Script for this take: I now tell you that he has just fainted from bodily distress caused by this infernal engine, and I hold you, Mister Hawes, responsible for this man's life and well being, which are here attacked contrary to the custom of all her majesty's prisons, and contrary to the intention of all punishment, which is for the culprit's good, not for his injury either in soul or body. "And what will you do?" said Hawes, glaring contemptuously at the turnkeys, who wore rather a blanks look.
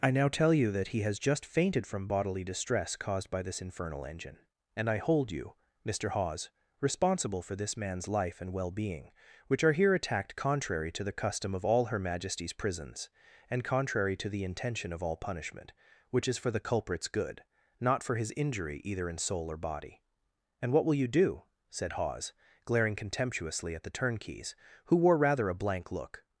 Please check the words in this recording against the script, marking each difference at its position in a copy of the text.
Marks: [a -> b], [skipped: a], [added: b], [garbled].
I now tell you that he has just fainted from bodily distress caused by this infernal engine, and I hold you, Mister Hawes, responsible for this man's life and well being, which are here attacked contrary to the custom of all her majesty's prisons, and contrary to the intention of all punishment, which is for the culprit's good, not for his injury either in soul or body. "And what will you do?" said Hawes, glaring contemptuously at the turnkeys, who wore rather a [blanks -> blank] look.